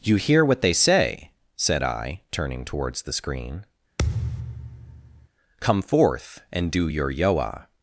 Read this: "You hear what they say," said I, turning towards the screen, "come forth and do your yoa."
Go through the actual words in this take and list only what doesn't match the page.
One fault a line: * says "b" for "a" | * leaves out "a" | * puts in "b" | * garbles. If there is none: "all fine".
all fine